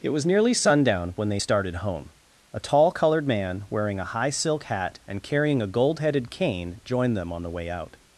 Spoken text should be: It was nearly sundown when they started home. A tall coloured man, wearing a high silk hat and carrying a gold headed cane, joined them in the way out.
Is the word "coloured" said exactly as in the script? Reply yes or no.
yes